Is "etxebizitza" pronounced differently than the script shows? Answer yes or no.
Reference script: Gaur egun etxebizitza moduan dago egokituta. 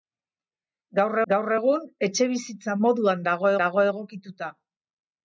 no